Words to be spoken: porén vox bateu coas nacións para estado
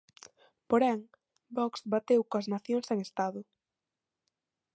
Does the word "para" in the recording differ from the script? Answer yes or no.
yes